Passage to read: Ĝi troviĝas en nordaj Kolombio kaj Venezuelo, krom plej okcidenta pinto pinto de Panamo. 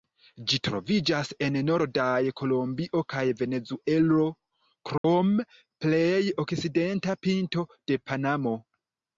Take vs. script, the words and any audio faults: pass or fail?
fail